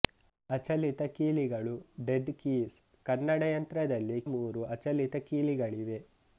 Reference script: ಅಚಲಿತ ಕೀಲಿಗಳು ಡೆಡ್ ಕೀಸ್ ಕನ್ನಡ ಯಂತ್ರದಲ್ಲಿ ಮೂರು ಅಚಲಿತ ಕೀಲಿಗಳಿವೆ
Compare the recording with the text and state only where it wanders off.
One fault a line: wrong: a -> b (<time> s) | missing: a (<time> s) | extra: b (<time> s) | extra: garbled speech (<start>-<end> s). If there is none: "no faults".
no faults